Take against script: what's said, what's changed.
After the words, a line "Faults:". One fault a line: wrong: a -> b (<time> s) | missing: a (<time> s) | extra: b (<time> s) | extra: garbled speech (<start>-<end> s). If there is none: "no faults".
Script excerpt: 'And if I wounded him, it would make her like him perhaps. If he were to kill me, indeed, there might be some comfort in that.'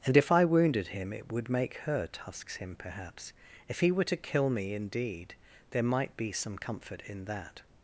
'And if I wounded him, it would make her tusks him perhaps. If he were to kill me, indeed, there might be some comfort in that.'
Faults:
wrong: like -> tusks (2.1 s)